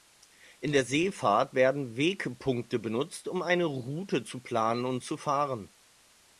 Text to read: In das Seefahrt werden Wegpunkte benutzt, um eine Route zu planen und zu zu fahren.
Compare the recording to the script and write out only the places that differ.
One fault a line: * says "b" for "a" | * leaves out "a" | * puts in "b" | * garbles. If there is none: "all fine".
* says "der" for "das"
* leaves out "zu"